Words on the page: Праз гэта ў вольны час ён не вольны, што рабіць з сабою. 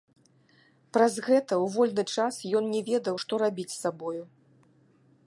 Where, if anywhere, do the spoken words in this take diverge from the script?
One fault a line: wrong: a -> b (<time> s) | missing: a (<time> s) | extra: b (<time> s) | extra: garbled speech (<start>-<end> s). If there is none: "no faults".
wrong: вольны -> ведаў (2.9 s)